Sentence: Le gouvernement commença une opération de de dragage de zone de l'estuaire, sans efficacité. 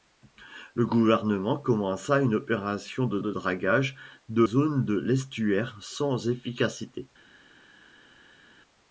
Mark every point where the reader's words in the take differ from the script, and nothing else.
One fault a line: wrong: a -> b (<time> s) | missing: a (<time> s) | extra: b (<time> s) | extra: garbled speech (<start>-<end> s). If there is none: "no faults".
no faults